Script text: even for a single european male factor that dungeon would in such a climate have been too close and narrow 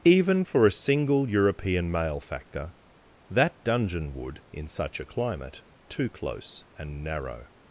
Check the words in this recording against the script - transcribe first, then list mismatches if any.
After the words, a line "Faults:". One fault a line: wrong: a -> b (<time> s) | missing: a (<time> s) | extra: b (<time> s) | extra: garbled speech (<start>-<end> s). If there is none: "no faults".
even for a single european male factor that dungeon would in such a climate too close and narrow
Faults:
missing: have been (5.6 s)